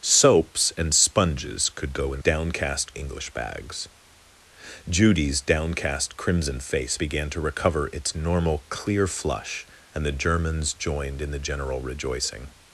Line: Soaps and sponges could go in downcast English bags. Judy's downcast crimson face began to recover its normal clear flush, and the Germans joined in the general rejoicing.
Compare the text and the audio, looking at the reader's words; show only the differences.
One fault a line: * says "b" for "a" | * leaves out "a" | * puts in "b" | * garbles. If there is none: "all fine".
all fine